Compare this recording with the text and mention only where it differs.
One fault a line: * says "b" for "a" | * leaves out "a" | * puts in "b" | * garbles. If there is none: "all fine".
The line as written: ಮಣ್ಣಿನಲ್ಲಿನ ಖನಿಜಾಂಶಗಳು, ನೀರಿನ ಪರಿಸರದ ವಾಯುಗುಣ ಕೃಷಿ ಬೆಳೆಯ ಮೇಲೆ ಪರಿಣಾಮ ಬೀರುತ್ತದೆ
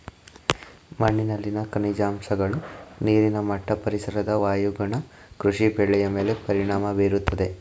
* puts in "ಮಟ್ಟ"